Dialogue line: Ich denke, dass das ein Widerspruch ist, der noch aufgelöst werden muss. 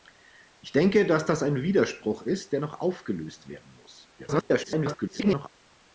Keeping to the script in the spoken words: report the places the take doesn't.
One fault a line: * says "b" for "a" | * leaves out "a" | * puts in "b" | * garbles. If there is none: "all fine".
* garbles